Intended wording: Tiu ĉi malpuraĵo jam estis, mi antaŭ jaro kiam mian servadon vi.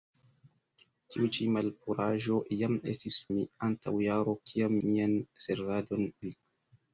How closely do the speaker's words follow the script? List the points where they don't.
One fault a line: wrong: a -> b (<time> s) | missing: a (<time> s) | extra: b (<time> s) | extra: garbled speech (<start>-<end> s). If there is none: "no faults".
no faults